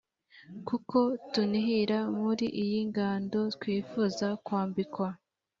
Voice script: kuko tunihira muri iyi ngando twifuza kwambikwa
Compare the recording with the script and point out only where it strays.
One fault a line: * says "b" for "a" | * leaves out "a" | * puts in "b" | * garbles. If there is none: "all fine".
all fine